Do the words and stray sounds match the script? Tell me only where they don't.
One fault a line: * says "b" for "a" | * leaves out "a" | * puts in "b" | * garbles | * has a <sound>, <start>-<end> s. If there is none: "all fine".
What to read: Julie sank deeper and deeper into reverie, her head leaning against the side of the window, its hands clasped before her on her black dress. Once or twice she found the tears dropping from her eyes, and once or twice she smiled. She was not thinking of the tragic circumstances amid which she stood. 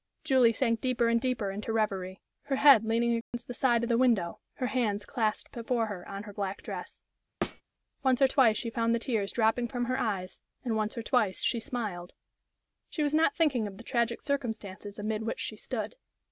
* has a dropout, 3.2-3.3 s
* says "her" for "its"
* has a thud, 7.4-7.6 s